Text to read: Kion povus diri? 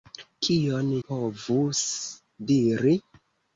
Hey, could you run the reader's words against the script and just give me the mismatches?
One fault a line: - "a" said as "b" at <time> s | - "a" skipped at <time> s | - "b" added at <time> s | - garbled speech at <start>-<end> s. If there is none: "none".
none